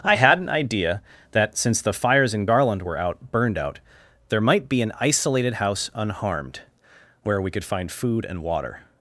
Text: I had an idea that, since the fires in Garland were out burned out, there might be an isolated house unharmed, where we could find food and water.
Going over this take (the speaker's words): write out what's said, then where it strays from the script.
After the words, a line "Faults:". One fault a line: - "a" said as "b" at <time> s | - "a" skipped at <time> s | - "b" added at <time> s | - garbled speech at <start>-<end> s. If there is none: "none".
I had an idea that, since the fires in Garland were out burned out, there might be an isolated house unharmed, where we could find food and water.
Faults:
none